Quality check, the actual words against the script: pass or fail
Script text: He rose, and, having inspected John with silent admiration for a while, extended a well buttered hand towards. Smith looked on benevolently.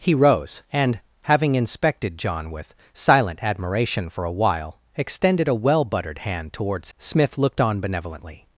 pass